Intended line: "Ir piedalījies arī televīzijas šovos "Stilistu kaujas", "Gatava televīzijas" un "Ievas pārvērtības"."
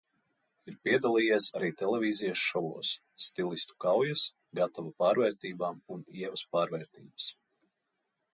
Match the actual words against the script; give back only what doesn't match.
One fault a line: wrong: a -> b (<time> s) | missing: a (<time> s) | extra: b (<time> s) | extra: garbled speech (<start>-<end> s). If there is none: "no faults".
wrong: televīzijas -> pārvērtībām (5.0 s)